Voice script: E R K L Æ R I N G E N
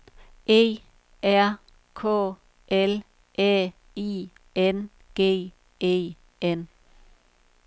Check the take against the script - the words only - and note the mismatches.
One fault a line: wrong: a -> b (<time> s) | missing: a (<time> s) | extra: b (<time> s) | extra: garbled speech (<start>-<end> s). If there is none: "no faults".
missing: R (3.7 s)